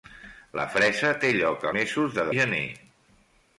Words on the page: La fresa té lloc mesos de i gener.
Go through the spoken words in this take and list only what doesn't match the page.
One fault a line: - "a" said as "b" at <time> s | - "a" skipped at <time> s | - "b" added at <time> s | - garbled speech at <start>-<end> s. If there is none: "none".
none